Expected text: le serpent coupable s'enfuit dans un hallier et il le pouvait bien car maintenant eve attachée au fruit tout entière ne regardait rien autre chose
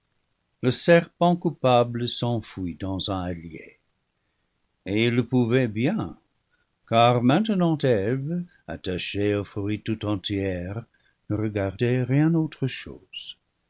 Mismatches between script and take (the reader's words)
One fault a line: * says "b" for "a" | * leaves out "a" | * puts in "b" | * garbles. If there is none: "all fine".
all fine